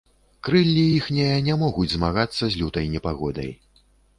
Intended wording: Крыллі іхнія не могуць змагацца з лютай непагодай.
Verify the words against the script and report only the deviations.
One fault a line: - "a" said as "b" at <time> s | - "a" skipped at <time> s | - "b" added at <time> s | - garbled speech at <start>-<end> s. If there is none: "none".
none